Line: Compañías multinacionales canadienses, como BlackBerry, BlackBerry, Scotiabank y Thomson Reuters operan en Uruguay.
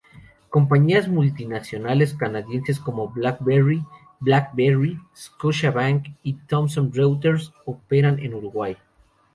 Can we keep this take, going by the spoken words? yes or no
yes